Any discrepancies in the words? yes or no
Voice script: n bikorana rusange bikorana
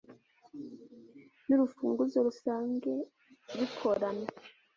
yes